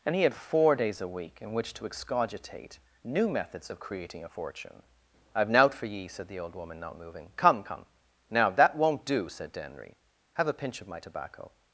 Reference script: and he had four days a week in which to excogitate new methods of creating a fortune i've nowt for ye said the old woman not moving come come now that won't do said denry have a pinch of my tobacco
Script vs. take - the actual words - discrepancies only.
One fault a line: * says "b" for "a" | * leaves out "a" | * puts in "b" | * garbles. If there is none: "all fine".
all fine